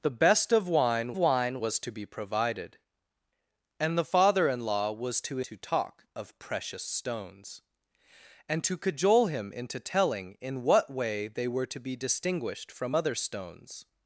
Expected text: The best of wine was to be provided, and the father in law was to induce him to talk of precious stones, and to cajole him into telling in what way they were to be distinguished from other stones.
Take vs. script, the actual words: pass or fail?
fail